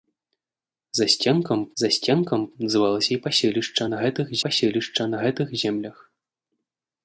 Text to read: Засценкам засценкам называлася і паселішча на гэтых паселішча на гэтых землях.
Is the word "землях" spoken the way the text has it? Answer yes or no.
yes